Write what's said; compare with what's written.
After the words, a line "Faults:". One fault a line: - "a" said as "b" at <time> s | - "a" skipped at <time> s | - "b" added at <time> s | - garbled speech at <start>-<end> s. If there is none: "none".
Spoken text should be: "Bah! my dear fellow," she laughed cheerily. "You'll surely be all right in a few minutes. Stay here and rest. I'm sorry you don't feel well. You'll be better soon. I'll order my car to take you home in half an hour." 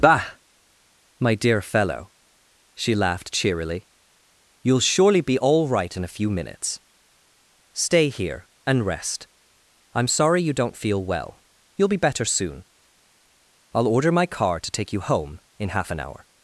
"Bah! my dear fellow," she laughed cheerily. "You'll surely be all right in a few minutes. Stay here and rest. I'm sorry you don't feel well. You'll be better soon. I'll order my car to take you home in half an hour."
Faults:
none